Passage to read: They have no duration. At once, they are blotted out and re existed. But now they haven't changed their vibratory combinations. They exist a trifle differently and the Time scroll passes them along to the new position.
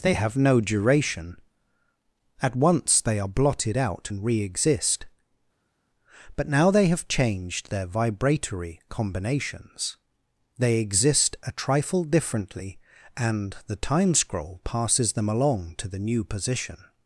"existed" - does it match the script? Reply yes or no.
no